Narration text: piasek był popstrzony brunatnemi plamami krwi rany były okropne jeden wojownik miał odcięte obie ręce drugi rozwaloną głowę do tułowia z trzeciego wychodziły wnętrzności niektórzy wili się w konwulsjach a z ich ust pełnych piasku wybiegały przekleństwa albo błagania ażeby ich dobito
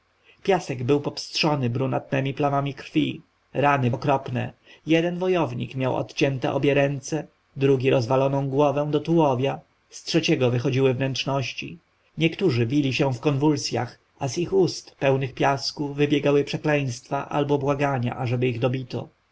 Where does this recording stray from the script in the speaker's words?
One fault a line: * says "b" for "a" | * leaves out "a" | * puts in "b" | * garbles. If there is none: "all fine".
* leaves out "były"